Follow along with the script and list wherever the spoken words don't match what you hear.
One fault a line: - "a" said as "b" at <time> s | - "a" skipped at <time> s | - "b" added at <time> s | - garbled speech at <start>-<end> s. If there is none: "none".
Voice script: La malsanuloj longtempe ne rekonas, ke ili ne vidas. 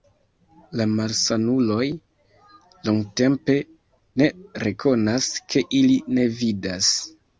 none